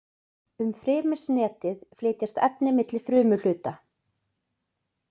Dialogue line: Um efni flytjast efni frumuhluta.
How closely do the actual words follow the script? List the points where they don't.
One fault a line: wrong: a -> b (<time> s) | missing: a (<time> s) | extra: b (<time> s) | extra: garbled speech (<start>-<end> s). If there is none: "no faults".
wrong: efni -> frymisnetið (0.8 s)
extra: milli (2.8 s)